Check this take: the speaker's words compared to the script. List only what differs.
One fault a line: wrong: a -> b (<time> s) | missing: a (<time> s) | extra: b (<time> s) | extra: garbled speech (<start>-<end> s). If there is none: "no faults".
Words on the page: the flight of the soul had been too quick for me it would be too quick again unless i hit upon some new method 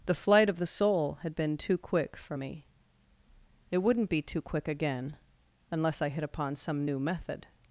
wrong: would -> wouldn't (3.8 s)